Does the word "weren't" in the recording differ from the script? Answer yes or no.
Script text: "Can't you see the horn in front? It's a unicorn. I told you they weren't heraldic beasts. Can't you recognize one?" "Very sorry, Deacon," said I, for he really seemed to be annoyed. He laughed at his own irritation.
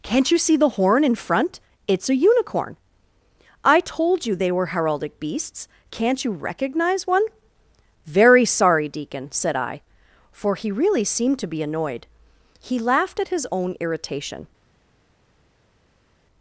yes